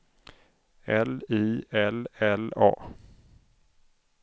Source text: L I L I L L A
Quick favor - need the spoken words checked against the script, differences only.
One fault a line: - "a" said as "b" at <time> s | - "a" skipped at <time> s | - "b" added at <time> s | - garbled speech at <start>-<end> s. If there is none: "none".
- "I L" skipped at 2.1 s